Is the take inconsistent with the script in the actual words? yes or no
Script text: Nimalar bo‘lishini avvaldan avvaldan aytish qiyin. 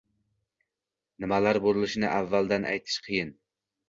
yes